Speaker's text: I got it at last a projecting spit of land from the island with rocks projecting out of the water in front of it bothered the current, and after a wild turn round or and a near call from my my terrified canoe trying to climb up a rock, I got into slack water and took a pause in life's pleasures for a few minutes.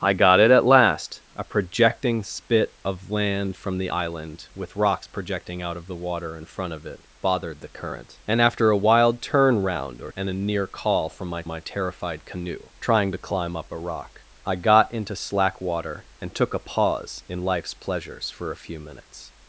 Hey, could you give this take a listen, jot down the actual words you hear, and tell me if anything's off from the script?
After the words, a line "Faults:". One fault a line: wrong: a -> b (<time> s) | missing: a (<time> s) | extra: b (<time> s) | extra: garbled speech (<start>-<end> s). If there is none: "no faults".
I got it at last a projecting spit of land from the island with rocks projecting out of the water in front of it bothered the current, and after a wild turn round or and a near call from my my terrified canoe trying to climb up a rock, I got into slack water and took a pause in life's pleasures for a few minutes.
Faults:
no faults